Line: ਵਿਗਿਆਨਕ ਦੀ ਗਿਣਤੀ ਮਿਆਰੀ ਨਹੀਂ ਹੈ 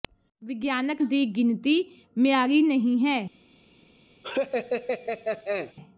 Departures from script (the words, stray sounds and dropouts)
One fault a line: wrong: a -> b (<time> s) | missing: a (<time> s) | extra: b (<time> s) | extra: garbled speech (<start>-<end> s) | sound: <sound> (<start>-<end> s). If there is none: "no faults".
sound: laugh (4.2-5.7 s)